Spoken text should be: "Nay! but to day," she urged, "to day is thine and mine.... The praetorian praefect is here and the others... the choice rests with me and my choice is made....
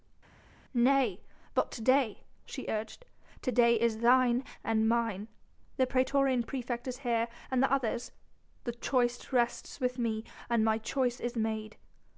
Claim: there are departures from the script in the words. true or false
false